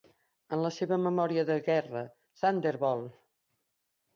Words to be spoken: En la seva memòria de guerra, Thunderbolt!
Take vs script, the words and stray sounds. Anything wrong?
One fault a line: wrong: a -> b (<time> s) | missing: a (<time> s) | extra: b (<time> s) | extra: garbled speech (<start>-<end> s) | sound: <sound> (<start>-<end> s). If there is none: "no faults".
no faults